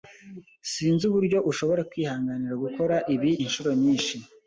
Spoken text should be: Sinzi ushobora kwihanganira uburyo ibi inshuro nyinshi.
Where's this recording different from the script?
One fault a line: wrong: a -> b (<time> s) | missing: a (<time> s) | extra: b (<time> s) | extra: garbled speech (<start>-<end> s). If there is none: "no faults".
extra: uburyo (1.1 s)
wrong: uburyo -> gukora (2.6 s)